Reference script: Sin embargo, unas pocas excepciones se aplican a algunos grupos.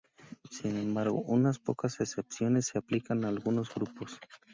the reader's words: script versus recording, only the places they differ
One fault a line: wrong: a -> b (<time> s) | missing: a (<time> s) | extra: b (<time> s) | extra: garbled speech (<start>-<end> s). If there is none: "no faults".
no faults